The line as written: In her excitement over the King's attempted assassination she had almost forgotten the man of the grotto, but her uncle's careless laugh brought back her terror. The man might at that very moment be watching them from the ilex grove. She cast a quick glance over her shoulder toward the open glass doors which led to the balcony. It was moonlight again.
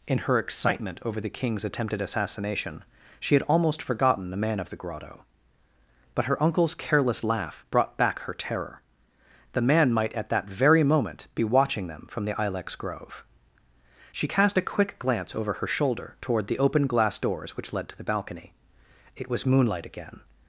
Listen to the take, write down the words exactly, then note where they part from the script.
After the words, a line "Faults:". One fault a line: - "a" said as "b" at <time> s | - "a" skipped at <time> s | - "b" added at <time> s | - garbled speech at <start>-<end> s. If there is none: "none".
In her excitement over the King's attempted assassination she had almost forgotten the man of the grotto, but her uncle's careless laugh brought back her terror. The man might at that very moment be watching them from the ilex grove. She cast a quick glance over her shoulder toward the open glass doors which led to the balcony. It was moonlight again.
Faults:
none